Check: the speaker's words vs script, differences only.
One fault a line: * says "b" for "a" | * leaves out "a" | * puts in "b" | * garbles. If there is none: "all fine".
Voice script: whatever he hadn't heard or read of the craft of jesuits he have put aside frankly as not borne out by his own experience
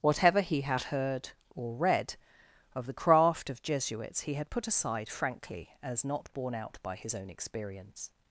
* says "had" for "hadn't"
* says "had" for "have"